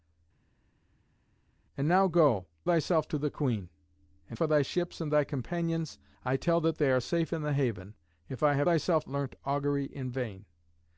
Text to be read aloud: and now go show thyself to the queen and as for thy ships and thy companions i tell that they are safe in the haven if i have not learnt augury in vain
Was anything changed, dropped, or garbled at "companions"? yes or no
no